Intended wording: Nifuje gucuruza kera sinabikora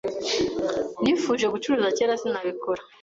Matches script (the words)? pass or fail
pass